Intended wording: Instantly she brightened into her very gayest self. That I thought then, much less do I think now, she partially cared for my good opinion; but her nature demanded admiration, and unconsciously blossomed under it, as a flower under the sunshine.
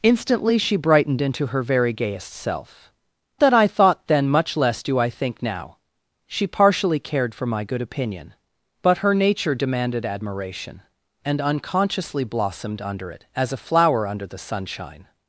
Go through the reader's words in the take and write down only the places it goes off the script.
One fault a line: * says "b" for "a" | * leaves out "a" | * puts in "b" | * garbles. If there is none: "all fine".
all fine